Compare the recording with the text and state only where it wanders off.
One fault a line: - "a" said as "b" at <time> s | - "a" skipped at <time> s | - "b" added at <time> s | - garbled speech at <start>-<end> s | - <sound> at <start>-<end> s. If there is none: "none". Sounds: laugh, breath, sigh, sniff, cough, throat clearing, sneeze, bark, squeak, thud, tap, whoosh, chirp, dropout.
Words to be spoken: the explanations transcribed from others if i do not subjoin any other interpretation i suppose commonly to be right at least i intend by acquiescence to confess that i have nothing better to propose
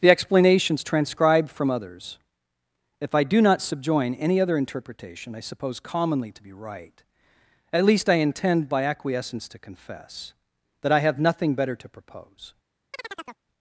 - chirp at 12.9-13.4 s